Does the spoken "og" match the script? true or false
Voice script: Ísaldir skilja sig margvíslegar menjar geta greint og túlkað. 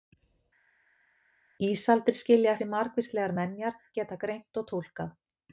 true